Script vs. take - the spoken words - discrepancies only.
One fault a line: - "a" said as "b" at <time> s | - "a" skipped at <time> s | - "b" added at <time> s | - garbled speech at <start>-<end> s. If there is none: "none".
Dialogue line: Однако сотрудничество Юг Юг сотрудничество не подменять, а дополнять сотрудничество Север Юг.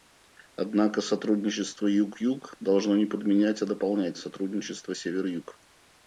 - "сотрудничество" said as "должно" at 2.6 s